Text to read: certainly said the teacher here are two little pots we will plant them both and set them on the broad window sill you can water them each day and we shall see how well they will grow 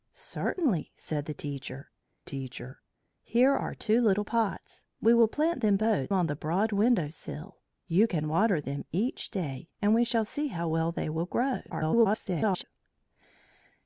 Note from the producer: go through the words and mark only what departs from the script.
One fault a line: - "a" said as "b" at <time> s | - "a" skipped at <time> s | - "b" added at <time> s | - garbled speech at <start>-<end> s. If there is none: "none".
- "teacher" added at 2.2 s
- "and set them" skipped at 6.1 s
- garbled speech at 11.7-12.6 s